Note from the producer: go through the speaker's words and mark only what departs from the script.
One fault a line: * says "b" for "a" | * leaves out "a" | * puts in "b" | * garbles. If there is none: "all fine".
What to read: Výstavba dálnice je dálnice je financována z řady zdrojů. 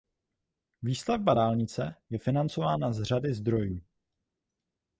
* leaves out "dálnice je"